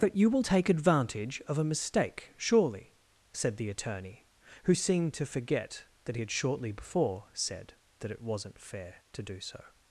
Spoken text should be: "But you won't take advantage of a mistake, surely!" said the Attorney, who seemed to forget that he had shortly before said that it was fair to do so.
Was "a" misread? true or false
false